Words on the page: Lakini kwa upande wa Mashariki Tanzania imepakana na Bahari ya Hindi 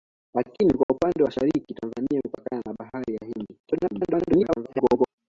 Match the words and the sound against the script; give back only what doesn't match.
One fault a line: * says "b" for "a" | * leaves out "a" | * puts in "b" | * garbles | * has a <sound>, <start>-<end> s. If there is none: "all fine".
* has a dropout, 0.8-0.9 s
* leaves out "wa"
* garbles